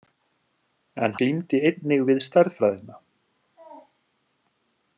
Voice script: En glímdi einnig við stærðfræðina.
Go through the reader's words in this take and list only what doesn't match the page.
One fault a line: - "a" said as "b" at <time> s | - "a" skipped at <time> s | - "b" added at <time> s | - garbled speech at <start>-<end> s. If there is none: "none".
none